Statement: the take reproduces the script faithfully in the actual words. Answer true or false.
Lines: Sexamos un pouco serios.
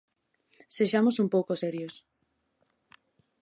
true